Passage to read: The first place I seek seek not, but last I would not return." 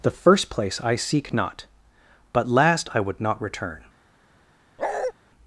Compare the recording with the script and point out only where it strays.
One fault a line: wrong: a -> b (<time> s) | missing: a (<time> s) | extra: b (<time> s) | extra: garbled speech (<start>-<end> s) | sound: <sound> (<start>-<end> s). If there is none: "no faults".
missing: seek (1.3 s)
sound: bark (4.8-5.1 s)